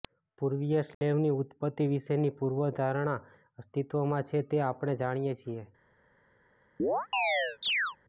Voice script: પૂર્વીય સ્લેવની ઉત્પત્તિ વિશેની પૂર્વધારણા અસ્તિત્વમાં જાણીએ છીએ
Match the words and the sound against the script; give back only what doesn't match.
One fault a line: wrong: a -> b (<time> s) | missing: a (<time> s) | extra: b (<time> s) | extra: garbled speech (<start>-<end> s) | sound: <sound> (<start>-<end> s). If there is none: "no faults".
sound: dropout (0.9-1.0 s)
extra: છે તે આપણે (4.3 s)
sound: chirp (6.8-8.0 s)